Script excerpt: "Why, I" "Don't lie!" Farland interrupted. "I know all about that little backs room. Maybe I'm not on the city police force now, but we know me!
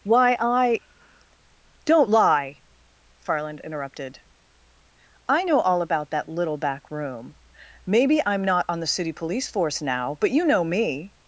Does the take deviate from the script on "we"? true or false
true